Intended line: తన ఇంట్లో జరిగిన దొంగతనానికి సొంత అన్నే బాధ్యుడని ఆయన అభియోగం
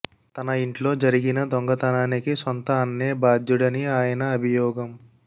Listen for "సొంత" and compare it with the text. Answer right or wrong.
right